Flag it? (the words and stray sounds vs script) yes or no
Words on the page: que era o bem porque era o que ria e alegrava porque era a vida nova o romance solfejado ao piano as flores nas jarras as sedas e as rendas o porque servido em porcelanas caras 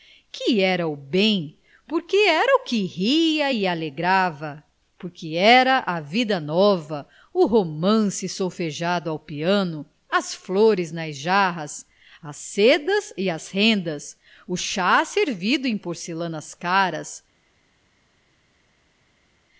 yes